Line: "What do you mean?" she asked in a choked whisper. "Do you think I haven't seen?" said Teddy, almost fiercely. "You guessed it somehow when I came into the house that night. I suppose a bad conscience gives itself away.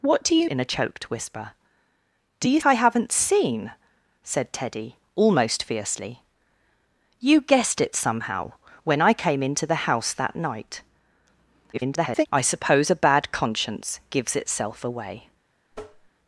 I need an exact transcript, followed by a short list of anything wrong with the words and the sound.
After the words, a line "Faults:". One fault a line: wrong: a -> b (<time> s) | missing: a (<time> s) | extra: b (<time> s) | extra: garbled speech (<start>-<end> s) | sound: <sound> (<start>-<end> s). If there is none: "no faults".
"What do you in a choked whisper. "Do you I haven't seen?" said Teddy, almost fiercely. "You guessed it somehow when I came into the house that night. [garbled] I suppose a bad conscience gives itself away.
Faults:
missing: mean she asked (0.5 s)
missing: think (2.6 s)
extra: garbled speech (11.7-12.3 s)
sound: tap (15.7-16.1 s)